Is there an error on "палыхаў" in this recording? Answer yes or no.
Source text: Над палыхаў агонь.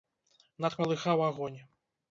no